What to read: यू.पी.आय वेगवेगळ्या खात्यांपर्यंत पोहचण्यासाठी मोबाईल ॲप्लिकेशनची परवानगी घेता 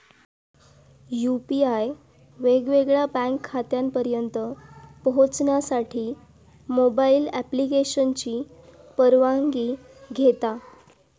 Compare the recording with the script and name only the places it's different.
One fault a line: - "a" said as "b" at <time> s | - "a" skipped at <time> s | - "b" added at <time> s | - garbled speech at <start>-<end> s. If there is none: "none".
- "बँक" added at 3.1 s